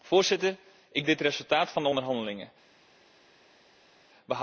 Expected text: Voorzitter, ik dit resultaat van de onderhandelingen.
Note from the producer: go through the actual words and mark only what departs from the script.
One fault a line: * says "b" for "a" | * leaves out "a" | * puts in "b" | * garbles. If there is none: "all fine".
all fine